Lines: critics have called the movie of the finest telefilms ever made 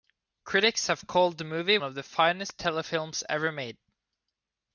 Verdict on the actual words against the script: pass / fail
pass